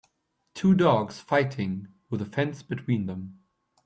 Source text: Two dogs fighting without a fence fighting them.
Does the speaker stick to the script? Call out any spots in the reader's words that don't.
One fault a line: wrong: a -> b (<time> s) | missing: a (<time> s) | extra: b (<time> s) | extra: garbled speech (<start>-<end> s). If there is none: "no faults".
wrong: without -> with (2.1 s)
wrong: fighting -> between (2.6 s)